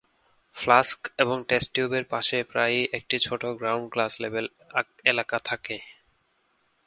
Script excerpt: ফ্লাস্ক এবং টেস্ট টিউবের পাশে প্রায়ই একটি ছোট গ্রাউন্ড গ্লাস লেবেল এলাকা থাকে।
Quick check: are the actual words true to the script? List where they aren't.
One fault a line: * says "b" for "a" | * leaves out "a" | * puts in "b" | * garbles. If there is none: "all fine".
all fine